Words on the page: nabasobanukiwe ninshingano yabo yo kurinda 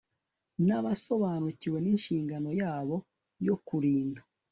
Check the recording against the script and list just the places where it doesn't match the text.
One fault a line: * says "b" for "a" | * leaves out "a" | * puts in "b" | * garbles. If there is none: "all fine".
all fine